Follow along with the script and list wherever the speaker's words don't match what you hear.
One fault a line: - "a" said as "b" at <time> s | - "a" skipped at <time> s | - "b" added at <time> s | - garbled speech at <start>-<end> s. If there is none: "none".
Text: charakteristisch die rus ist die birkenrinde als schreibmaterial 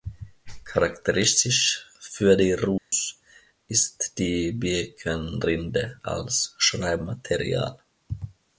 - "für" added at 2.0 s